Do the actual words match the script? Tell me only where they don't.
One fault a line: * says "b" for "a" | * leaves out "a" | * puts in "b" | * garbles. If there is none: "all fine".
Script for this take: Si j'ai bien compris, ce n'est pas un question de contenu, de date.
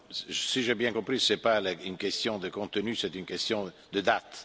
* says "une" for "un"
* puts in "c'est une question"